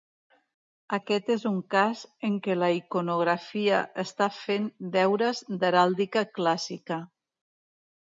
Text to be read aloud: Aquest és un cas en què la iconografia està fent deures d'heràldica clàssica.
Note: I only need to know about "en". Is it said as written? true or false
true